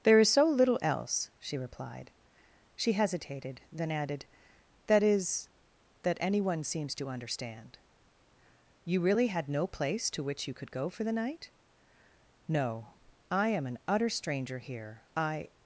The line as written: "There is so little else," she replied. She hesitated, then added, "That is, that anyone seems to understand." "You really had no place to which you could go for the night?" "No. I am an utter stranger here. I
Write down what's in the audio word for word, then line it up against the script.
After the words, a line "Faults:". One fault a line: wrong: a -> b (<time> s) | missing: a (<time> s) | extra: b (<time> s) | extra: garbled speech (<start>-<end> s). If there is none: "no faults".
"There is so little else," she replied. She hesitated, then added, "That is, that anyone seems to understand." "You really had no place to which you could go for the night?" "No. I am an utter stranger here. I
Faults:
no faults